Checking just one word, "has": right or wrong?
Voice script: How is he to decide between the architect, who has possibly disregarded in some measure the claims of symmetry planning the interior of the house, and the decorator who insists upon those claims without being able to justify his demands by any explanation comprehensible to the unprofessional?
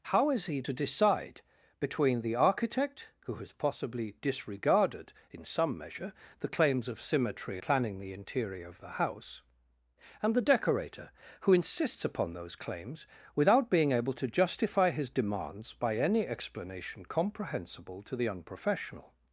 right